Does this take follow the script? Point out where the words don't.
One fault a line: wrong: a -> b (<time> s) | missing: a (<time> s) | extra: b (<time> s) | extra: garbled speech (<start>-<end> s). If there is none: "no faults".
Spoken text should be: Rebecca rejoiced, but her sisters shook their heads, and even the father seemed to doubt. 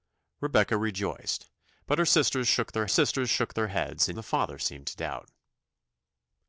extra: sisters shook their (2.9 s)
missing: even (4.2 s)